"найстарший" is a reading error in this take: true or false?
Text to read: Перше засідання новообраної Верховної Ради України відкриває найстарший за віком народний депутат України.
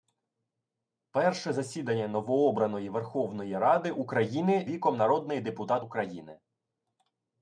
true